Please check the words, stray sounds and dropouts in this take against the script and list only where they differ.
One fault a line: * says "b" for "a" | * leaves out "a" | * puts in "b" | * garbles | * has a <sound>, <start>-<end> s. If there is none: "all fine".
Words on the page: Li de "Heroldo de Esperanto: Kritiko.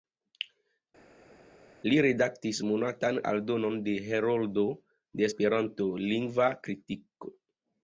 * puts in "redaktis monatan aldonon"
* puts in "Lingva"